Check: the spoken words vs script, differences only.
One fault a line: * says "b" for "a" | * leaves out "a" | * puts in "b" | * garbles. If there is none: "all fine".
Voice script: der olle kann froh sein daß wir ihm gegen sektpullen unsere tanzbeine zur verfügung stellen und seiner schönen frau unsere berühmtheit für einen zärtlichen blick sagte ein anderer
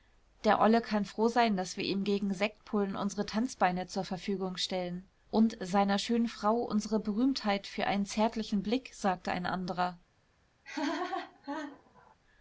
all fine